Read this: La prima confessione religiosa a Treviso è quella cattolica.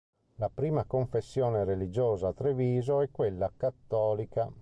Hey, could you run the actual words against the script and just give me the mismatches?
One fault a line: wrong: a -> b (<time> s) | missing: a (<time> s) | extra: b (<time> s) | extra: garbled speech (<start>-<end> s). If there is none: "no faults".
no faults